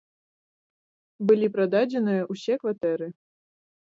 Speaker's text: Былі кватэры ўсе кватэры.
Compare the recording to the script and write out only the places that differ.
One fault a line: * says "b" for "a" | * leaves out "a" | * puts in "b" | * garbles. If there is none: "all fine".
* says "прададзеныя" for "кватэры"